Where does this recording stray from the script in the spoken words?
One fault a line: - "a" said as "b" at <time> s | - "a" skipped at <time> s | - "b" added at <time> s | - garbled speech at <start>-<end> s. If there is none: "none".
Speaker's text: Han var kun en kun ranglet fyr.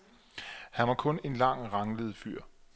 - "kun" said as "lang" at 1.3 s